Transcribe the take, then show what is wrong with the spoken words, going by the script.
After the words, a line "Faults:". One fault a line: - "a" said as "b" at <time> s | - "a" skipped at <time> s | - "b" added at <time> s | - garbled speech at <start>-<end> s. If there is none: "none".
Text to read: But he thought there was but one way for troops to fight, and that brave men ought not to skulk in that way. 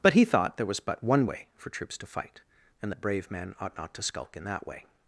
But he thought there was but one way for troops to fight, and that brave men ought not to skulk in that way.
Faults:
none